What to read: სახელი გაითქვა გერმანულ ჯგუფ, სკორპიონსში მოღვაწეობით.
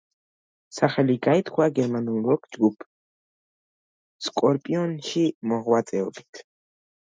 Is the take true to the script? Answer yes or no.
no